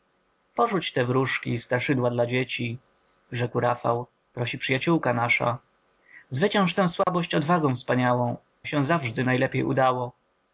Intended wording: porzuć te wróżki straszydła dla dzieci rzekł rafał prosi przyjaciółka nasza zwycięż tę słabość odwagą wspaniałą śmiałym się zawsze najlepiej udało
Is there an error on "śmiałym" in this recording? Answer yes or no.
yes